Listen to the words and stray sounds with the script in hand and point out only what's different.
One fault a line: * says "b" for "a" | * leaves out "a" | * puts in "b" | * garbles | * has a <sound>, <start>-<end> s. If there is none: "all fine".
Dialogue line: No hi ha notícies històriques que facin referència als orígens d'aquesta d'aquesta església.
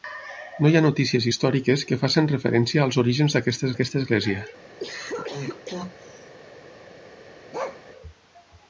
* has a cough, 4.8-6.3 s
* has a bark, 7.5-7.8 s